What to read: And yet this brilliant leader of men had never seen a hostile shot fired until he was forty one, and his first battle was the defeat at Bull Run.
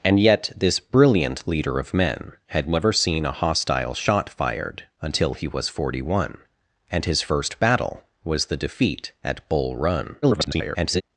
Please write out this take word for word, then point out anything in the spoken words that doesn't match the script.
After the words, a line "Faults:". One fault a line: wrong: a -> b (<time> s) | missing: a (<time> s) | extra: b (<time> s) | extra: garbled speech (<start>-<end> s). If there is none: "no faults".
And yet this brilliant leader of men had never seen a hostile shot fired until he was forty one, and his first battle was the defeat at Bull Run. [garbled]
Faults:
extra: garbled speech (10.2-11.0 s)